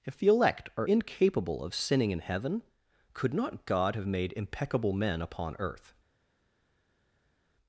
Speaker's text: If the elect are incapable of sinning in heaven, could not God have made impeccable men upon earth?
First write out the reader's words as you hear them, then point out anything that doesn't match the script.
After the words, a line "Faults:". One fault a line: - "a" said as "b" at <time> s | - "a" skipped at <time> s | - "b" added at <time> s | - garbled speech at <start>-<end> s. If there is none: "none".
If the elect are incapable of sinning in heaven, could not God have made impeccable men upon earth?
Faults:
none